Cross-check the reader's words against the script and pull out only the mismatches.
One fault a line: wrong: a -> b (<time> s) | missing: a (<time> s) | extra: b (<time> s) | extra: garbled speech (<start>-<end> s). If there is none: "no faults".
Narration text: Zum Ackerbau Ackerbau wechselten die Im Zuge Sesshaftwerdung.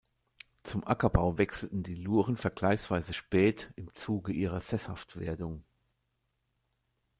missing: Ackerbau (1.4 s)
extra: Luren vergleichsweise spät (1.9 s)
extra: ihrer (4.3 s)